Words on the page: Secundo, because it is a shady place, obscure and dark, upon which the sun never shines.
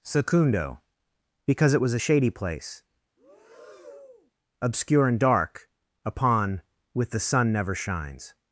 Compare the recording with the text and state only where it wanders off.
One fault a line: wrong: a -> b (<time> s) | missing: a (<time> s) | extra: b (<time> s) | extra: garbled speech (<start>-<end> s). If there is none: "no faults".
wrong: is -> was (1.8 s)
wrong: which -> with (6.9 s)